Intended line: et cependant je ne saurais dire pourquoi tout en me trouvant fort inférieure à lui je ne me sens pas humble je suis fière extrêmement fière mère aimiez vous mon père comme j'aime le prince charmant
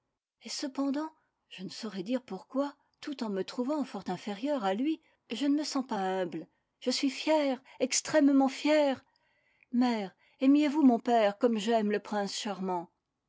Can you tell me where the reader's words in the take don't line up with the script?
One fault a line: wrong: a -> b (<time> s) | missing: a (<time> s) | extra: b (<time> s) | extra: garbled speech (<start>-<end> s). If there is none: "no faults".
no faults